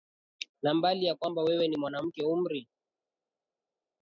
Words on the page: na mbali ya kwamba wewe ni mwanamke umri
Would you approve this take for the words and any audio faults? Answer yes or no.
yes